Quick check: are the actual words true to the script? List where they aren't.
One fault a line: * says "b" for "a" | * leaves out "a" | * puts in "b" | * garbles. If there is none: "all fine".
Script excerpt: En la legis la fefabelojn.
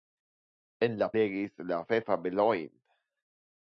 all fine